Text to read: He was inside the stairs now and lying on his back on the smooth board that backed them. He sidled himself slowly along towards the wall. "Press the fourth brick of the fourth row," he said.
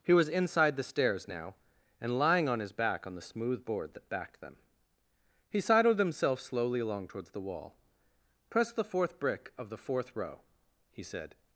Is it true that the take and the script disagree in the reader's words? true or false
false